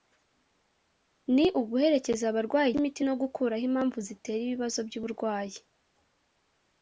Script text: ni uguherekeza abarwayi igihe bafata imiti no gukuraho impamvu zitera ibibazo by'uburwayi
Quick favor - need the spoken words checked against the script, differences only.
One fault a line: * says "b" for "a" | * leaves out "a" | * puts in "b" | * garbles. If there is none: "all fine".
* leaves out "igihe bafata"